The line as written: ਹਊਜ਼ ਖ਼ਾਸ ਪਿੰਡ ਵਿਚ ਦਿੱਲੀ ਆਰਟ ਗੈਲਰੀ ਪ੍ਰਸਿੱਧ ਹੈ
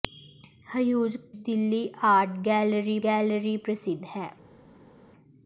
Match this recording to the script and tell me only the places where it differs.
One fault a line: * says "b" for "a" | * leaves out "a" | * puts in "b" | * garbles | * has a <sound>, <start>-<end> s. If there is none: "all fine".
* leaves out "ਖ਼ਾਸ ਪਿੰਡ ਵਿਚ"
* puts in "ਗੈਲਰੀ"